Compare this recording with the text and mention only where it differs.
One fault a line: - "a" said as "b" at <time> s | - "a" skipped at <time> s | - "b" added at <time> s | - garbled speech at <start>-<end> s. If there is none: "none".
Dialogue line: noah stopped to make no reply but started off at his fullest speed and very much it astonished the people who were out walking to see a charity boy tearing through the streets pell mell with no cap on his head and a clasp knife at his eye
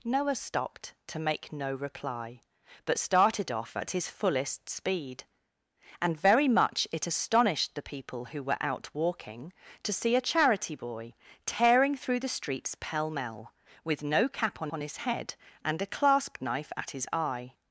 - "on" added at 14.7 s